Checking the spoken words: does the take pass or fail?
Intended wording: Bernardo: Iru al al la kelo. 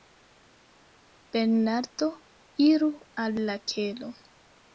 fail